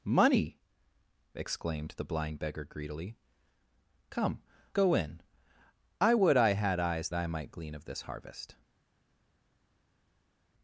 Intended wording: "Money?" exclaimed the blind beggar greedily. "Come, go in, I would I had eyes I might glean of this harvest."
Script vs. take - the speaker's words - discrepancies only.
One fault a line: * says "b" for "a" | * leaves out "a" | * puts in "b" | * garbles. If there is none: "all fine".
all fine